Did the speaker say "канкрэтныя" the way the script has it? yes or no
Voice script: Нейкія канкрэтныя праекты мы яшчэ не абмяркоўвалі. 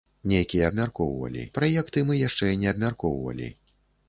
no